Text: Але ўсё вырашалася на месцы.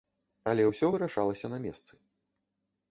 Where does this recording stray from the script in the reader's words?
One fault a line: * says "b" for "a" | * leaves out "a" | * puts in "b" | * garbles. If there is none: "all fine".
all fine